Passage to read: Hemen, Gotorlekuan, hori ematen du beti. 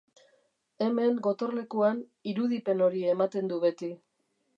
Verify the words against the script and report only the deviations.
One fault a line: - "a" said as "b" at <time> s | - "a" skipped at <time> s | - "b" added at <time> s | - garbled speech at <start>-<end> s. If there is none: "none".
- "irudipen" added at 2.3 s